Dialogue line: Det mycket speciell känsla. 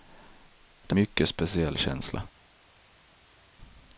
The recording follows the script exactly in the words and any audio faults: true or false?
true